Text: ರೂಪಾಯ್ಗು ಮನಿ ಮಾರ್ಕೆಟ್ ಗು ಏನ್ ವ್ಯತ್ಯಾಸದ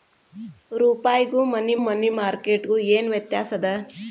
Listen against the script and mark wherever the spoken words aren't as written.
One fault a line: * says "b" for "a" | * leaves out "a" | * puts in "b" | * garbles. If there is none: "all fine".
* puts in "ಮನಿ"